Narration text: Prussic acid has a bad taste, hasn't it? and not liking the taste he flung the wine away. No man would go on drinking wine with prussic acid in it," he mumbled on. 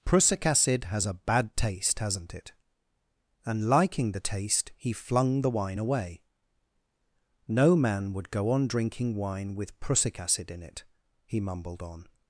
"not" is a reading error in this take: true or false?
true